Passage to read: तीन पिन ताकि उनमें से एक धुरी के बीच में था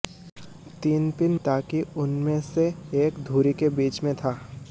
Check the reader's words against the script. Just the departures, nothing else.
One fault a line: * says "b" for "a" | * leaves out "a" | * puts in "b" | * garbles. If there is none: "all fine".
all fine